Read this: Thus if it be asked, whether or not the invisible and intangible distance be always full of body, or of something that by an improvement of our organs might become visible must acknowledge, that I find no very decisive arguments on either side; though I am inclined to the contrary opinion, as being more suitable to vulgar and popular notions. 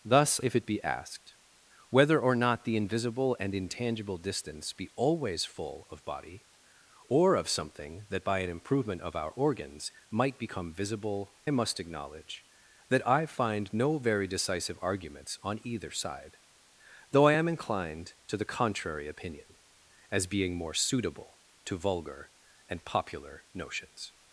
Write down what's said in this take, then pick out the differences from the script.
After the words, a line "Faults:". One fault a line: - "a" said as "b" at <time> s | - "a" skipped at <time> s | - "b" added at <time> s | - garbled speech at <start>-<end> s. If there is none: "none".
Thus if it be asked, whether or not the invisible and intangible distance be always full of body, or of something that by an improvement of our organs might become visible must acknowledge, that I find no very decisive arguments on either side; though I am inclined to the contrary opinion, as being more suitable to vulgar and popular notions.
Faults:
none